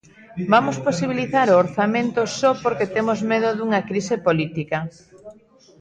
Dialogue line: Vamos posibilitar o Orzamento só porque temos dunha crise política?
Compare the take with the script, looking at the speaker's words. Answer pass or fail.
fail